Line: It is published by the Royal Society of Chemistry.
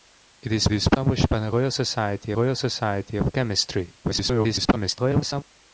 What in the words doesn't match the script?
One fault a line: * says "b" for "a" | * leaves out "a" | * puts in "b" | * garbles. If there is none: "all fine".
* puts in "is"
* puts in "Royal Society"
* garbles